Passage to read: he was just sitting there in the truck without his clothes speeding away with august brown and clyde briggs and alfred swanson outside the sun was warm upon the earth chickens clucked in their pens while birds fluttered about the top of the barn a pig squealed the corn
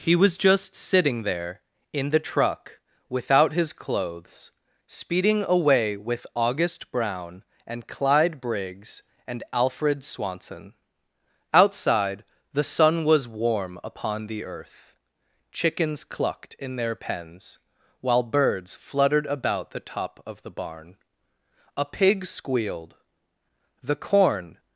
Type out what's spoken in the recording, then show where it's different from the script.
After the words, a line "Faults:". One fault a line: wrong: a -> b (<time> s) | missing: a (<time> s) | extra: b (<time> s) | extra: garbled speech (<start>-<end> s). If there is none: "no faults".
he was just sitting there in the truck without his clothes speeding away with august brown and clyde briggs and alfred swanson outside the sun was warm upon the earth chickens clucked in their pens while birds fluttered about the top of the barn a pig squealed the corn
Faults:
no faults